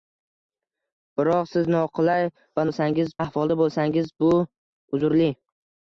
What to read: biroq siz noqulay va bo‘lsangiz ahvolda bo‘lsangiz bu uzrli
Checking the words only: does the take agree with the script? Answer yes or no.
yes